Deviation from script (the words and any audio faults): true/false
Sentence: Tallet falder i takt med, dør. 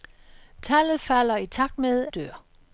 false